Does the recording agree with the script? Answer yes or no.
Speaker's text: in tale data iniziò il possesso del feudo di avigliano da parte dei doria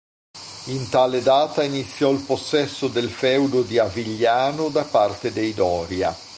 yes